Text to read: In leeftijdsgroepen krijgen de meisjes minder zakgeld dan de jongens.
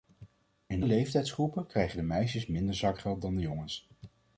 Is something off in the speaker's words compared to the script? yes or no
no